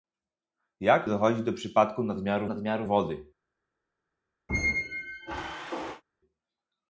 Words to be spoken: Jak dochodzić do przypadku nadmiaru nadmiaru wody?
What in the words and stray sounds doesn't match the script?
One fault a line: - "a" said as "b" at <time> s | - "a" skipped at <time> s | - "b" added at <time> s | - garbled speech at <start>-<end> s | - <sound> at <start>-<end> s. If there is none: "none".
- squeak at 4.5-6.0 s